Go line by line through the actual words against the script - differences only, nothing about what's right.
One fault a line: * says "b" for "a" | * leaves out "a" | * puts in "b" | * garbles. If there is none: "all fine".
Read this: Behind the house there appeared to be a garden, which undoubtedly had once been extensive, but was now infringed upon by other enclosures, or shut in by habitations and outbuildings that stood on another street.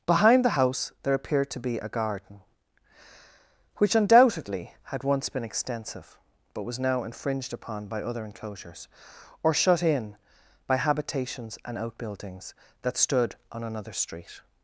all fine